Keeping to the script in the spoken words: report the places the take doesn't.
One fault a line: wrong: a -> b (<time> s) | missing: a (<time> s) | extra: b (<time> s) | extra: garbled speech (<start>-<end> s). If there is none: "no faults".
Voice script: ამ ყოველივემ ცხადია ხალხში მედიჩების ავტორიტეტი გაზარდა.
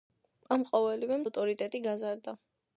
missing: ცხადია ხალხში მედიჩების (1.2 s)